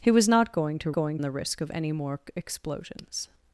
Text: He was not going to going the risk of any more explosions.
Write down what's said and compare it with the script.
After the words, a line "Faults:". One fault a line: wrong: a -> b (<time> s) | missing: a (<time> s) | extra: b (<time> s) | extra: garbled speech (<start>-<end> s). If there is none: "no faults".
He was not going to going the risk of any more explosions.
Faults:
no faults